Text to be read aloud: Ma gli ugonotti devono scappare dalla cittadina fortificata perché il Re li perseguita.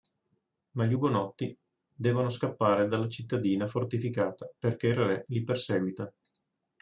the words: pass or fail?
pass